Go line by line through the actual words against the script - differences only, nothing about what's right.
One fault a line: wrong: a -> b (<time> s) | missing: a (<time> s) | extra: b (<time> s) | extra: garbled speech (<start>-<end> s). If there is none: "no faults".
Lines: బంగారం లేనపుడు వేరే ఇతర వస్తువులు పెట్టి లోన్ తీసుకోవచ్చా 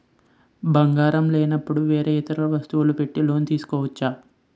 no faults